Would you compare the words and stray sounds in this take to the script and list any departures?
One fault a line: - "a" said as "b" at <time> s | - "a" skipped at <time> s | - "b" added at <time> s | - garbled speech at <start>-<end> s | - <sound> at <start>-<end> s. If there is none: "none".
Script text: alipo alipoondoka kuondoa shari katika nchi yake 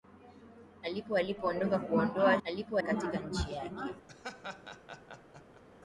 - "shari" said as "alipo" at 2.4 s
- laugh at 4.1-5.6 s